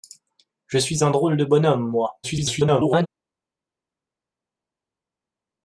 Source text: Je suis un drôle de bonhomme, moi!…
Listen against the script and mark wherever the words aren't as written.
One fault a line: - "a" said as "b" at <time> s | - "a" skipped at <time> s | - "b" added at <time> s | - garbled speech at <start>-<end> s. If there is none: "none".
- garbled speech at 2.2-3.1 s